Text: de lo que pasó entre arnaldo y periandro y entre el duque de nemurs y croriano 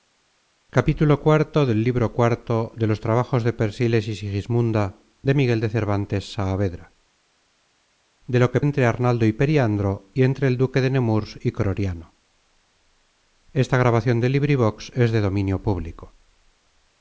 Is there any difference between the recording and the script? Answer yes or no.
yes